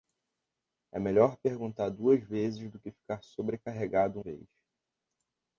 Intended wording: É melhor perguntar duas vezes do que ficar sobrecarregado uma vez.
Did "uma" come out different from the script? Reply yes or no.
yes